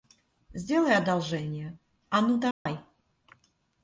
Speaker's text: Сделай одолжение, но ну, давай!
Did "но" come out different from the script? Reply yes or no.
yes